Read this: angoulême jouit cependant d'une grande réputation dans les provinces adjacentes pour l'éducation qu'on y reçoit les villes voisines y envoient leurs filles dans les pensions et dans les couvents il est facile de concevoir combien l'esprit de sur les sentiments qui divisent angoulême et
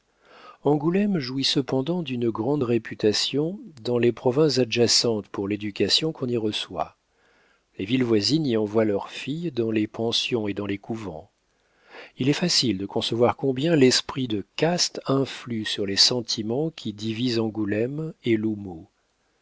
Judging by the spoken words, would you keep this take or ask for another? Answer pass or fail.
fail